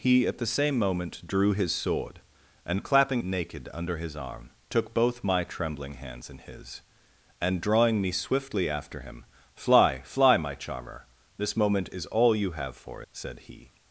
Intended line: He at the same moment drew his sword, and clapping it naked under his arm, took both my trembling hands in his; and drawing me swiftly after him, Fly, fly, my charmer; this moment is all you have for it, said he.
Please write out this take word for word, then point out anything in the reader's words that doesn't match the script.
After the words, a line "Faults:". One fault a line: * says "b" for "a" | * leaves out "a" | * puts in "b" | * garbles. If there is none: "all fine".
He at the same moment drew his sword, and clapping naked under his arm, took both my trembling hands in his; and drawing me swiftly after him, Fly, fly, my charmer; this moment is all you have for said he.
Faults:
* leaves out "it"
* leaves out "it"